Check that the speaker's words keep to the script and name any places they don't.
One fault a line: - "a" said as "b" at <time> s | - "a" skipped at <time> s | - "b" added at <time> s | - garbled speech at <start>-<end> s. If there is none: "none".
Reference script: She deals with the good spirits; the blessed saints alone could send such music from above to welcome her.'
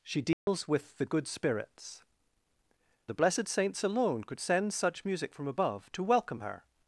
none